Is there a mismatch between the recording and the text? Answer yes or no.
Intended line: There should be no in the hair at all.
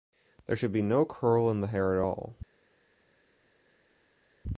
yes